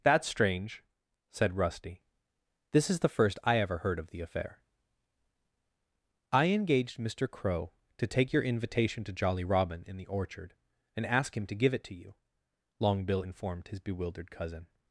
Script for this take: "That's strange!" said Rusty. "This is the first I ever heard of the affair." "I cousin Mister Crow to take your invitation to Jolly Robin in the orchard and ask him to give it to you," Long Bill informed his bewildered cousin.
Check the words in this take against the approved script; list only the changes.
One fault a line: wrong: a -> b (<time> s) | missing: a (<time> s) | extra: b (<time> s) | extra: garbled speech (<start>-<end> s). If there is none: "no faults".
wrong: cousin -> engaged (6.5 s)